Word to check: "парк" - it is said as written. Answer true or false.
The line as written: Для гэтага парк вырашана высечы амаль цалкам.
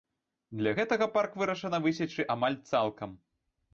true